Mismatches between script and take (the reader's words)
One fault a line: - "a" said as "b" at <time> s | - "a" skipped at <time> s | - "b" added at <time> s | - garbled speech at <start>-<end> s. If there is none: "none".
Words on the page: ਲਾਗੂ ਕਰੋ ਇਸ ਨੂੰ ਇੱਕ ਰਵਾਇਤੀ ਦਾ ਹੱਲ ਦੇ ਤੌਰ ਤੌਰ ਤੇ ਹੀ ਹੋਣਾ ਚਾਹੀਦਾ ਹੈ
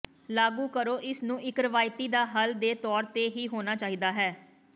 - "ਤੌਰ" skipped at 3.0 s